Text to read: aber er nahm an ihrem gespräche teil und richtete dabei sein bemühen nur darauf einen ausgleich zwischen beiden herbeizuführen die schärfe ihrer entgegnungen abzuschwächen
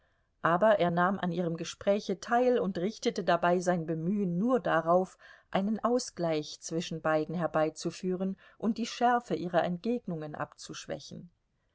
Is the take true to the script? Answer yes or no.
no